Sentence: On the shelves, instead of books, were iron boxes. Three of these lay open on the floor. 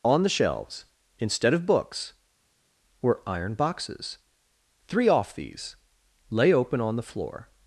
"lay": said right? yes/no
yes